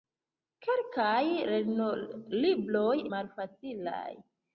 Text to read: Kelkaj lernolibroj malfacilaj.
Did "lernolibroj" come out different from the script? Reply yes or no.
no